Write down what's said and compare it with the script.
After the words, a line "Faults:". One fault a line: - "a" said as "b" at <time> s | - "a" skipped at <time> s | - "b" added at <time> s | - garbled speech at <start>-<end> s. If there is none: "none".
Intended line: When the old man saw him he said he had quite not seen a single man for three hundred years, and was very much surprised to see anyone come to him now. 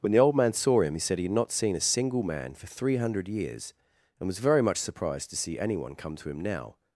When the old man saw him he said he had not seen a single man for three hundred years, and was very much surprised to see anyone come to him now.
Faults:
- "quite" skipped at 1.3 s